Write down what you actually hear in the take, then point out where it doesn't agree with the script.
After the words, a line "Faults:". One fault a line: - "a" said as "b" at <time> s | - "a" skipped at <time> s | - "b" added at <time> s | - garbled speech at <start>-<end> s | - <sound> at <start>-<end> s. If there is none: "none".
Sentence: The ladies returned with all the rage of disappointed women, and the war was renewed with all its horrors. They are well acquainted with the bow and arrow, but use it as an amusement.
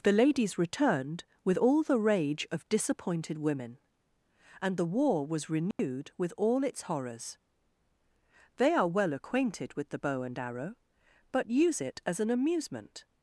The ladies returned with all the rage of disappointed women, and the war was renewed with all its horrors. They are well acquainted with the bow and arrow, but use it as an amusement.
Faults:
- dropout at 5.7-5.8 s